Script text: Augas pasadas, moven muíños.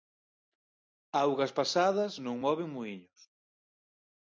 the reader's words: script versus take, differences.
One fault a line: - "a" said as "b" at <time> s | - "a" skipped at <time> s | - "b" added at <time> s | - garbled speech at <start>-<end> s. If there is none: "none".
- "non" added at 2.3 s